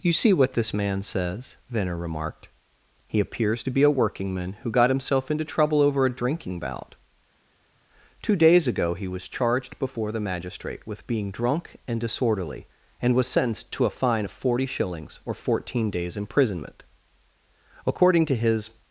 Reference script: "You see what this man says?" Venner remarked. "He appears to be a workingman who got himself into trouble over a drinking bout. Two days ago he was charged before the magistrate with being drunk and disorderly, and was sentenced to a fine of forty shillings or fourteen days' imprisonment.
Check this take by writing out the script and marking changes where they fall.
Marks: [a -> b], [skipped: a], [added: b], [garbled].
"You see what this man says?" Venner remarked. "He appears to be a workingman who got himself into trouble over a drinking bout. Two days ago he was charged before the magistrate with being drunk and disorderly, and was sentenced to a fine of forty shillings or fourteen days' imprisonment. [added: According to his]